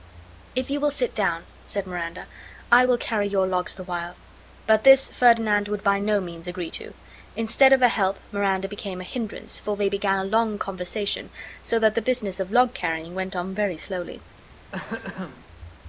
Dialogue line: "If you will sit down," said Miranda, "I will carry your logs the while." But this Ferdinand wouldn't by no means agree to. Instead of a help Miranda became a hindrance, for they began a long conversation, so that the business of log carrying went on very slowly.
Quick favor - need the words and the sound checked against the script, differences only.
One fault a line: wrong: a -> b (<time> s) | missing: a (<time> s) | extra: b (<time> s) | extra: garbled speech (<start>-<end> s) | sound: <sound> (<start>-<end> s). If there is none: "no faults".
wrong: wouldn't -> would (5.7 s)
sound: throat clearing (14.7-15.5 s)